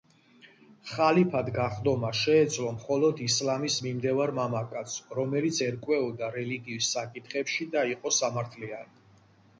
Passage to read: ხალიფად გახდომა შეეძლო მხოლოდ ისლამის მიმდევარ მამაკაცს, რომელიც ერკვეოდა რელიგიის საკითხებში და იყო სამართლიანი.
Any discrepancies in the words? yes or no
no